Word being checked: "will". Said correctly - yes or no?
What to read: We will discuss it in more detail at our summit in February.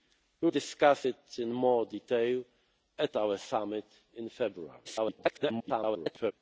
no